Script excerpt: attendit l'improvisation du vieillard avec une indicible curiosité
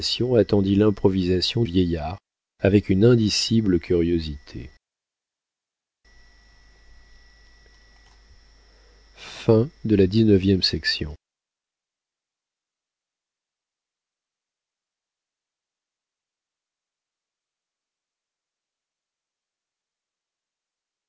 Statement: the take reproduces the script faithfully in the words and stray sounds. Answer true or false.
false